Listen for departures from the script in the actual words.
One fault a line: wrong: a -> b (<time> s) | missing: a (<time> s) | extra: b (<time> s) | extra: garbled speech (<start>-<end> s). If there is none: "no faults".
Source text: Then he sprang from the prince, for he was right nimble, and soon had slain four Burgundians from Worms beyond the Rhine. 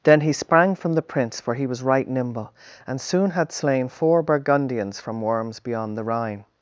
no faults